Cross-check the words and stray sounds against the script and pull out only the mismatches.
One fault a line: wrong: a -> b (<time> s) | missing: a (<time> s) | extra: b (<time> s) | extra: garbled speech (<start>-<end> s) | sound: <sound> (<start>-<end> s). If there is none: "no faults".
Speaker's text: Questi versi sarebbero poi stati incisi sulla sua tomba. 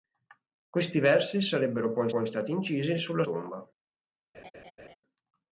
extra: poi (2.1 s)
missing: sua (3.2 s)
sound: laugh (4.3-5.0 s)